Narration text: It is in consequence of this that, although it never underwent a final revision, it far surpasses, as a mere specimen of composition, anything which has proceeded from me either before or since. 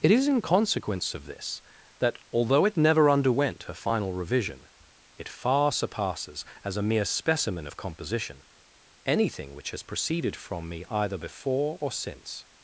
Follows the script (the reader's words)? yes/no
yes